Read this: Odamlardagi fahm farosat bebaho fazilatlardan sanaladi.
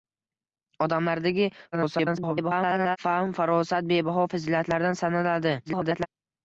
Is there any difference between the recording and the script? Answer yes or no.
yes